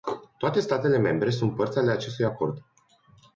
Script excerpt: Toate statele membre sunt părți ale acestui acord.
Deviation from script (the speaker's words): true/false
false